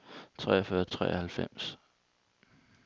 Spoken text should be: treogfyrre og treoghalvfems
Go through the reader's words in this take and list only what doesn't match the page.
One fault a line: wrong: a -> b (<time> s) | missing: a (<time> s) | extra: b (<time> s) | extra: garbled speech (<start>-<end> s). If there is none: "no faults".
no faults